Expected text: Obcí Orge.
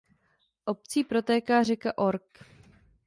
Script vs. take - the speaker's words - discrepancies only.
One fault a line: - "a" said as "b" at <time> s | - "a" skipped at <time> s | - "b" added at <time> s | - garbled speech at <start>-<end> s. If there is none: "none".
- "protéká řeka" added at 1.0 s